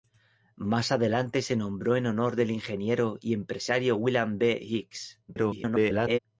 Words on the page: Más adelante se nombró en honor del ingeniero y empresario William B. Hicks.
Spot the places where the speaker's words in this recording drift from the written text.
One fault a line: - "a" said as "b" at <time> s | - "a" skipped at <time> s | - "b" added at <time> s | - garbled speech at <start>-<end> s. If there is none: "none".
- garbled speech at 5.3-6.2 s